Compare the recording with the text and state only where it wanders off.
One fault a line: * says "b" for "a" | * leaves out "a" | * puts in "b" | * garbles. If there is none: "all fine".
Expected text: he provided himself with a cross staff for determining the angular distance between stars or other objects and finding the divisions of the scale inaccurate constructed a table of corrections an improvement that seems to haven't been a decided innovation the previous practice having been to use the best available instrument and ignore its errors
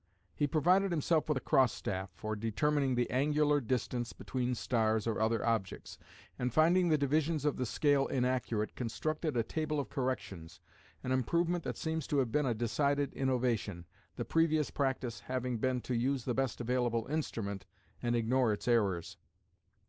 * says "have" for "haven't"